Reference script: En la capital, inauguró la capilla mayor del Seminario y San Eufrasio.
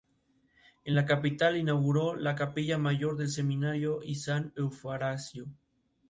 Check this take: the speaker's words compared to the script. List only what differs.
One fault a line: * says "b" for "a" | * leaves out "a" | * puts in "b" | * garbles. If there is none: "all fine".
all fine